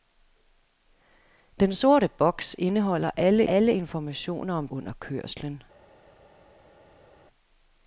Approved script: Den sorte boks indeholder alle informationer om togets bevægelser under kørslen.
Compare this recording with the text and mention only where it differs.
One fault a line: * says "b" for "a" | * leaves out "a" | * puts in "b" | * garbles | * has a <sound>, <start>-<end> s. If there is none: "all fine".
* puts in "alle"
* leaves out "togets bevægelser"